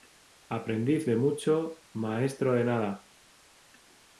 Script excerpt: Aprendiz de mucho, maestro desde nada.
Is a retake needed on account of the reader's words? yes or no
yes